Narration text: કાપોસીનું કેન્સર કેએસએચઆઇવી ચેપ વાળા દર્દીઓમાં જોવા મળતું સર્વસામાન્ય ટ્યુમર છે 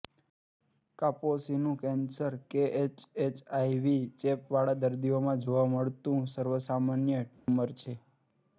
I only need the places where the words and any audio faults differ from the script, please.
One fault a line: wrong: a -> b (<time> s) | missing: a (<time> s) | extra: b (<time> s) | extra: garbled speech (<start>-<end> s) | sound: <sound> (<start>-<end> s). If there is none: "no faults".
sound: dropout (7.3-7.5 s)